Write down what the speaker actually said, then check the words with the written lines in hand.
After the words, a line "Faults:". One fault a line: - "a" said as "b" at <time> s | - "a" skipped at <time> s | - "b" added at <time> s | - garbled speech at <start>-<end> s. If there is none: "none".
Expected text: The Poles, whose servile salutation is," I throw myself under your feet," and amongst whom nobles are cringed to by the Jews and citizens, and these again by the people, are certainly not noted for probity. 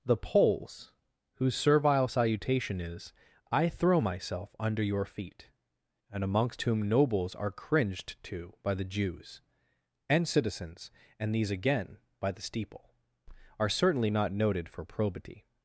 The Poles, whose servile salutation is," I throw myself under your feet," and amongst whom nobles are cringed to by the Jews and citizens, and these again by the steeple, are certainly not noted for probity.
Faults:
- "people" said as "steeple" at 12.4 s